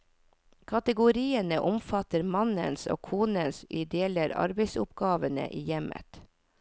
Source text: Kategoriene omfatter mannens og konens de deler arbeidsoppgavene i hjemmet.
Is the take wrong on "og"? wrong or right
right